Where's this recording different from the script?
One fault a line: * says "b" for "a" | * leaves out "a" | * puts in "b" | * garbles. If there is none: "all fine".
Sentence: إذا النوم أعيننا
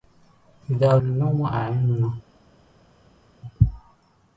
all fine